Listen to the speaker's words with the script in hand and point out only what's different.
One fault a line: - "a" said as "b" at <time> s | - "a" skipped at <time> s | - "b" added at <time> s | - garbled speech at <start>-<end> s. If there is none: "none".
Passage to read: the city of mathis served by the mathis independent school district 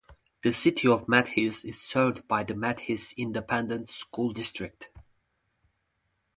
- "is" added at 1.6 s